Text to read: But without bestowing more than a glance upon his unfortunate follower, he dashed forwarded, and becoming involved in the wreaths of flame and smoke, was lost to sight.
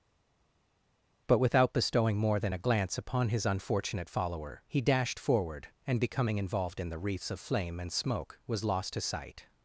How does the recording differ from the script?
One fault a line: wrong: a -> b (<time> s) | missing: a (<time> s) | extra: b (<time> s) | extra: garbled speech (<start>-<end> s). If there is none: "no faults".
wrong: forwarded -> forward (5.2 s)